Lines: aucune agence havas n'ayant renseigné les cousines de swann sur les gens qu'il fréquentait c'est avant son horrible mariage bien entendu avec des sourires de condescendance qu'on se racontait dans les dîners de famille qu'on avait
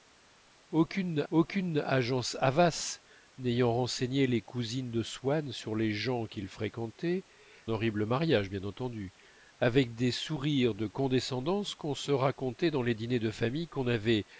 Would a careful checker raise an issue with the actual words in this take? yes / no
yes